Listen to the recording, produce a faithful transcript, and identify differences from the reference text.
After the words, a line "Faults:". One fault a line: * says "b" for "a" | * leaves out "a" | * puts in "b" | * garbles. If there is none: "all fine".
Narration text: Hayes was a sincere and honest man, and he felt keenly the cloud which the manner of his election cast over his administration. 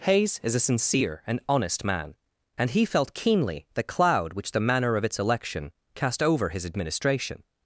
Hayes is a sincere and honest man, and he felt keenly the cloud which the manner of its election cast over his administration.
Faults:
* says "is" for "was"
* says "its" for "his"